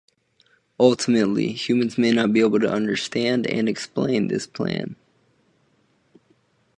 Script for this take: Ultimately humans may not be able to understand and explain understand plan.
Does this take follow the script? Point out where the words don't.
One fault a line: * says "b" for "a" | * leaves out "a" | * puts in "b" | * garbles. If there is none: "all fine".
* says "this" for "understand"